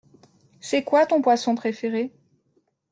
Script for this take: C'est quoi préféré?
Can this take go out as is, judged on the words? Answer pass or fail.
fail